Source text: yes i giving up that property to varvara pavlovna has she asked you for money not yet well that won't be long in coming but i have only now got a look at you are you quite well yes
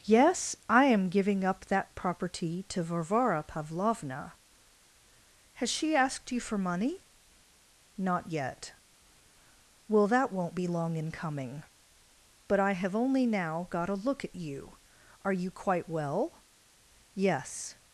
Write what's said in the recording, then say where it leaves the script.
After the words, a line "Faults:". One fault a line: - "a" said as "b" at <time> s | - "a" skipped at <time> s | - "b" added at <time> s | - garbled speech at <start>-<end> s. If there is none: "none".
yes i am giving up that property to varvara pavlovna has she asked you for money not yet well that won't be long in coming but i have only now got a look at you are you quite well yes
Faults:
- "am" added at 0.8 s